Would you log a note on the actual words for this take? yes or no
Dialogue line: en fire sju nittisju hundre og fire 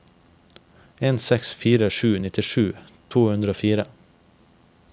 yes